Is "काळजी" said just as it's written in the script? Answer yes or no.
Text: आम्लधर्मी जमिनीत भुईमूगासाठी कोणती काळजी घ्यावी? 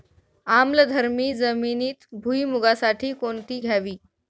no